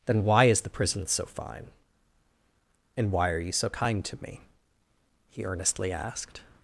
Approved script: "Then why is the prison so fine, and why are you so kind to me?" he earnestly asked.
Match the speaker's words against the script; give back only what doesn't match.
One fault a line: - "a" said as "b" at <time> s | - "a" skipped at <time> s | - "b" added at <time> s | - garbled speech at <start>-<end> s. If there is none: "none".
none